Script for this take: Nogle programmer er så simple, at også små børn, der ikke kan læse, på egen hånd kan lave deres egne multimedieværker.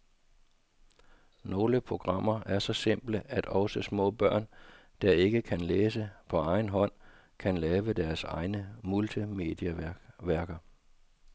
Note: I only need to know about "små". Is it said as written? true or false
true